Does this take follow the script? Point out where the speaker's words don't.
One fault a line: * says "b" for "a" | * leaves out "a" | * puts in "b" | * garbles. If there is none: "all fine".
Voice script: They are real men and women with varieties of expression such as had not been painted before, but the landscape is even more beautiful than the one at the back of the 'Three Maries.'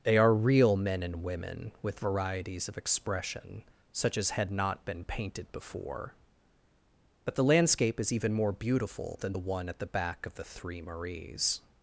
all fine